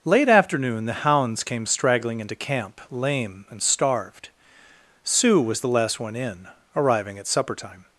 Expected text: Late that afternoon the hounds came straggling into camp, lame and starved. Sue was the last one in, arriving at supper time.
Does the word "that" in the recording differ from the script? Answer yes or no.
yes